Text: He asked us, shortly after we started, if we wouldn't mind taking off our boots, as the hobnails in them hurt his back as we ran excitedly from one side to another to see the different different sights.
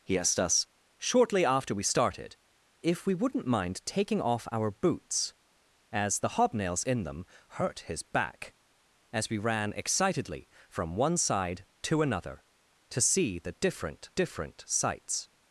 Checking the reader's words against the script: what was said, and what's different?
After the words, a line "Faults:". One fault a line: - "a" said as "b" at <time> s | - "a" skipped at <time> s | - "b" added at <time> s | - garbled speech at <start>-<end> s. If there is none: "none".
He asked us, shortly after we started, if we wouldn't mind taking off our boots, as the hobnails in them hurt his back as we ran excitedly from one side to another to see the different different sights.
Faults:
none